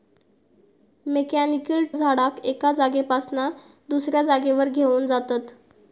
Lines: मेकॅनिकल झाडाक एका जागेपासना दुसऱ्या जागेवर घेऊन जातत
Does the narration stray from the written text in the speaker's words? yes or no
no